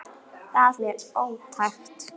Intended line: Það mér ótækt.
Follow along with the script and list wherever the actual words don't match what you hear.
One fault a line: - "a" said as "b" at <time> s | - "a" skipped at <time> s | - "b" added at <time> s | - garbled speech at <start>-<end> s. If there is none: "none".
none